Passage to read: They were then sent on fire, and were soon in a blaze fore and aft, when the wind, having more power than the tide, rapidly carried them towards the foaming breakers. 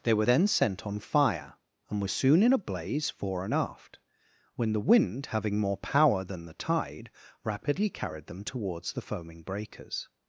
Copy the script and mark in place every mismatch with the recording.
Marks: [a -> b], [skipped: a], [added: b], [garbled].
They were then sent on fire, and were soon in a blaze fore and aft, when the wind, having more power than the tide, rapidly carried them towards the foaming breakers.